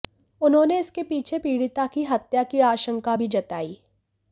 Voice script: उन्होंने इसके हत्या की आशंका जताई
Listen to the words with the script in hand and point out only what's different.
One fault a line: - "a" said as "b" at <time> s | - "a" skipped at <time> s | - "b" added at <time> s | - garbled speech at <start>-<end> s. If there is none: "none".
- "पीछे पीड़िता की" added at 1.0 s
- "भी" added at 3.1 s